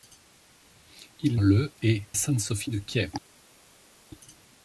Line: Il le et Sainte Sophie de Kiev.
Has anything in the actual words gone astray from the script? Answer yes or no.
no